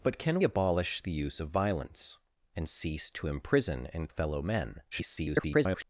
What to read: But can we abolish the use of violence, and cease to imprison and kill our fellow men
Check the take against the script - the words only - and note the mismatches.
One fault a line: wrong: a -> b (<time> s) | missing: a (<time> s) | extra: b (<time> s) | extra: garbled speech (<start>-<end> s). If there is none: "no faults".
missing: we (0.4 s)
missing: kill our (4.1 s)
extra: garbled speech (4.9-5.8 s)